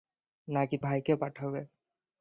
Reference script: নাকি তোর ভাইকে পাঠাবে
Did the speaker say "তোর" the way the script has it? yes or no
no